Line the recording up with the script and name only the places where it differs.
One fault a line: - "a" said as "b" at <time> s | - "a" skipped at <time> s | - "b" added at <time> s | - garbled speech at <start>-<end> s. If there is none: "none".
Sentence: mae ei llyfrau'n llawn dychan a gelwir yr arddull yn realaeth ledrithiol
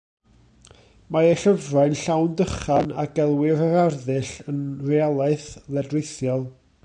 none